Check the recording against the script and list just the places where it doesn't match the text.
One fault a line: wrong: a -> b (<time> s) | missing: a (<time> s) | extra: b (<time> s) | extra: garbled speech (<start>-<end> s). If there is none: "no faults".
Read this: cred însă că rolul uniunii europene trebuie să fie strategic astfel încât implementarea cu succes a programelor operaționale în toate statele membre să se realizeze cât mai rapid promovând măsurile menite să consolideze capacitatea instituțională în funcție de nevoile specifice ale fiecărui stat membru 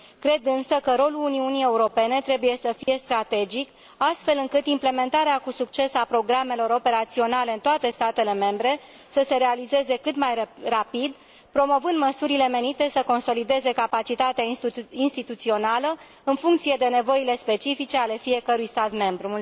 no faults